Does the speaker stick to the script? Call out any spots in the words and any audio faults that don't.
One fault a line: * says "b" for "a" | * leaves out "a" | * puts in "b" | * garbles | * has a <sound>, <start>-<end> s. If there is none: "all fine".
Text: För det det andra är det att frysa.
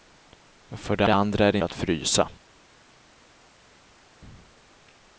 all fine